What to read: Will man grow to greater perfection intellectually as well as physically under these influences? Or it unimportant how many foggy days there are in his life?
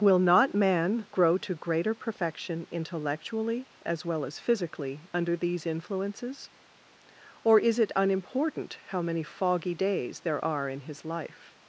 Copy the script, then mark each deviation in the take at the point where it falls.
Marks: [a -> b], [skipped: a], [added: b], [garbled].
Will [added: not] man grow to greater perfection intellectually as well as physically under these influences? Or [added: is] it unimportant how many foggy days there are in his life?